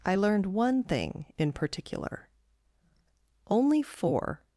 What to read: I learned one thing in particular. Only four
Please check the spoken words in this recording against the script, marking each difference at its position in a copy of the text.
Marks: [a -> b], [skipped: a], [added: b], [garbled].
I learned one thing in particular. Only four